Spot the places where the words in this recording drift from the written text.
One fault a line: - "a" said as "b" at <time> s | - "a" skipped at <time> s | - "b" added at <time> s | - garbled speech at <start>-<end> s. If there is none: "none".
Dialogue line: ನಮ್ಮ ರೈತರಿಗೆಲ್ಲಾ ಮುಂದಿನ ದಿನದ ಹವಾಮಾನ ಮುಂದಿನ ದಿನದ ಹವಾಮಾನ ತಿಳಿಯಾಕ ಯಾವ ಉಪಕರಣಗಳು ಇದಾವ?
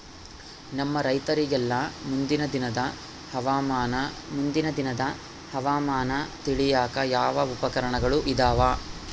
none